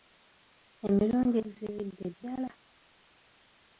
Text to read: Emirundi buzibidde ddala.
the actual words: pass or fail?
pass